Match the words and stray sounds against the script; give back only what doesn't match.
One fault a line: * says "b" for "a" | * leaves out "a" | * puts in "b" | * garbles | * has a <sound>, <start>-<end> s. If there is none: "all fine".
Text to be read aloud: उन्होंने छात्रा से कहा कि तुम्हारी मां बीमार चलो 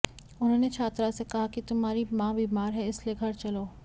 * puts in "है इसलिए घर"